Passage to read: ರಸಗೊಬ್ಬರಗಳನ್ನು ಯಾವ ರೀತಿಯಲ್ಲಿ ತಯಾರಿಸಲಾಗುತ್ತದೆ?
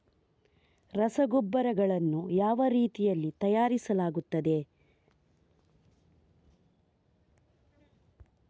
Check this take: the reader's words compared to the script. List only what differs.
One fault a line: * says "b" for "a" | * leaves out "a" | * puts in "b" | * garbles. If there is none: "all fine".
all fine